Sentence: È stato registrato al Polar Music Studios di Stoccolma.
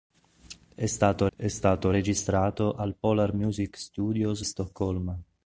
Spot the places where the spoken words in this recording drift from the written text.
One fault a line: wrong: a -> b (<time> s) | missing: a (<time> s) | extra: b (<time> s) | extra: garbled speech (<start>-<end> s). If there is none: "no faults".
extra: è stato (1.3 s)
missing: di (4.5 s)